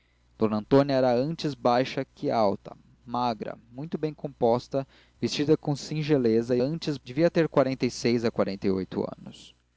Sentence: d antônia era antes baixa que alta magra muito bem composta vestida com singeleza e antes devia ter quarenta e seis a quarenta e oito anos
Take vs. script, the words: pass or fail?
pass